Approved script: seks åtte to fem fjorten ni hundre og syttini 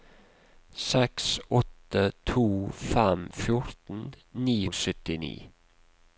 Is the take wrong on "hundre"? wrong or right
wrong